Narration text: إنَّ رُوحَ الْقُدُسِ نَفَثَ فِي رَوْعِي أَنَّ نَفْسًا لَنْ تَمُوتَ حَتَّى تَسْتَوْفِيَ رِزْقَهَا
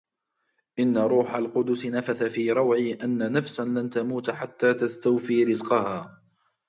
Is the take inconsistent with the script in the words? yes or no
no